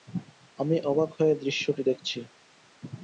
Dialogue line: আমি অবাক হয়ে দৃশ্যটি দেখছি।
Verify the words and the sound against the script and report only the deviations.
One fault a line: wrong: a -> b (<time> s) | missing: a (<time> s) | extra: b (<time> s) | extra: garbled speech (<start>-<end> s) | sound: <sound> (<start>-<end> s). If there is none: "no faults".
no faults